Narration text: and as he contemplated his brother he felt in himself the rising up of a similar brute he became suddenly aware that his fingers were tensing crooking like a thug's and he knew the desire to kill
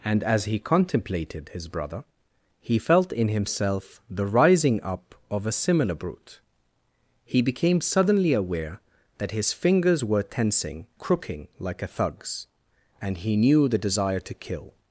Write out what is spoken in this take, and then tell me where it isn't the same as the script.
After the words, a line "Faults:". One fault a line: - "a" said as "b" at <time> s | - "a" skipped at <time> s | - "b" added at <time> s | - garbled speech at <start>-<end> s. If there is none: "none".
and as he contemplated his brother he felt in himself the rising up of a similar brute he became suddenly aware that his fingers were tensing crooking like a thug's and he knew the desire to kill
Faults:
none